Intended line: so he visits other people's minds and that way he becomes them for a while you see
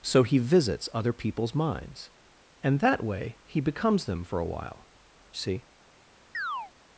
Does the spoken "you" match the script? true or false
false